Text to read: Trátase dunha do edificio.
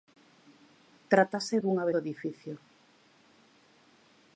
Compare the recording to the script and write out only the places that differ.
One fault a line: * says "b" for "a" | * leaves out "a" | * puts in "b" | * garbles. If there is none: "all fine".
all fine